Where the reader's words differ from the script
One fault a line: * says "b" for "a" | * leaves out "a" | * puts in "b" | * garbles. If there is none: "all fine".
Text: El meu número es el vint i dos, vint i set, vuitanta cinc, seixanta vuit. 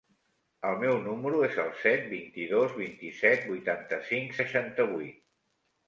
* puts in "set"